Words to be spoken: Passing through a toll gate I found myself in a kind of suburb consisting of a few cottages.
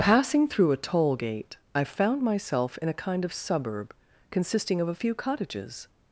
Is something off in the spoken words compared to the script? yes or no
no